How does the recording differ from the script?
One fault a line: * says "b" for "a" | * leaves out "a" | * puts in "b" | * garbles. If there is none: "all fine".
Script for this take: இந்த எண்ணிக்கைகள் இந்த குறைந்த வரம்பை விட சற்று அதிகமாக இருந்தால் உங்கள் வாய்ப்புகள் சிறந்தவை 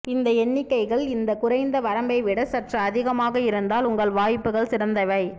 all fine